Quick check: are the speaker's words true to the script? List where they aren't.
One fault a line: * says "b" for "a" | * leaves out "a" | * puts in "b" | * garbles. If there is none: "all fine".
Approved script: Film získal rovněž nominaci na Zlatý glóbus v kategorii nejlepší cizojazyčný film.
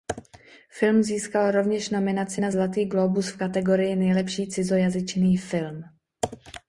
all fine